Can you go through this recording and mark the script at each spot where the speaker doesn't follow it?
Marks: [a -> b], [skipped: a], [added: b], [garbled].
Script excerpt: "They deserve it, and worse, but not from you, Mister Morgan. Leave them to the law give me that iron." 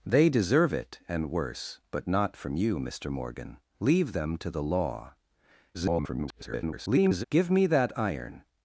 "They deserve it, and worse, but not from you, Mister Morgan. Leave them to the law [garbled] give me that iron."